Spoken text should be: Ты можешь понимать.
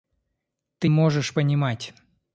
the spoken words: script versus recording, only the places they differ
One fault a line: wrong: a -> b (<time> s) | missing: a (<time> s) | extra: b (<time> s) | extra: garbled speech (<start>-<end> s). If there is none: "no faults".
no faults